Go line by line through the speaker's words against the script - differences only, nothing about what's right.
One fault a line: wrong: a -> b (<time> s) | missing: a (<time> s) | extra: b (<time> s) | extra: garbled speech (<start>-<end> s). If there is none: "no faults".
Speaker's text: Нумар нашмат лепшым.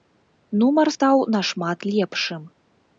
extra: стаў (0.9 s)